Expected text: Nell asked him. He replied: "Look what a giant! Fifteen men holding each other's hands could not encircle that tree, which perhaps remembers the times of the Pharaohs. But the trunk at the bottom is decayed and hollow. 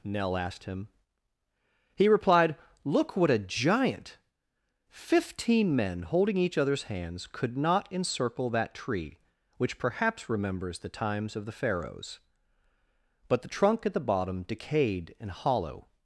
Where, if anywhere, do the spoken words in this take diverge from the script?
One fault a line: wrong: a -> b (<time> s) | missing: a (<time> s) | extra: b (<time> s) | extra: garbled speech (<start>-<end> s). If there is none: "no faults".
missing: is (14.4 s)